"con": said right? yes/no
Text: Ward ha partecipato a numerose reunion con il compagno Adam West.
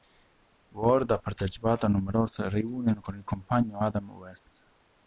yes